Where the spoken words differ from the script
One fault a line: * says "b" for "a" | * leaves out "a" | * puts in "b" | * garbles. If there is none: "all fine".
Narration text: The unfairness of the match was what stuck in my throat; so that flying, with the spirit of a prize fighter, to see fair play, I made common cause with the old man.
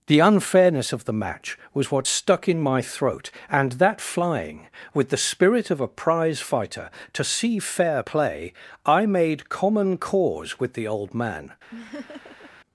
* says "and" for "so"